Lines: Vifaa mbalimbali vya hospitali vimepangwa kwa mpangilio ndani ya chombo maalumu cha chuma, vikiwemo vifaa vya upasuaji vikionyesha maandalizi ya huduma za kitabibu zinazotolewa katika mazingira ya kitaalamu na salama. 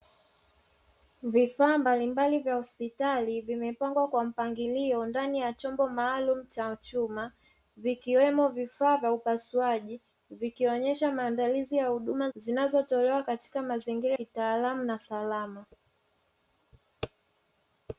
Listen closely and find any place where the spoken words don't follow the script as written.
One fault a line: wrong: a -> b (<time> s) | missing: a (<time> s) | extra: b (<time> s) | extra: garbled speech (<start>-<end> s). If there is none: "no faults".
missing: za kitabibu (12.3 s)
missing: ya (14.2 s)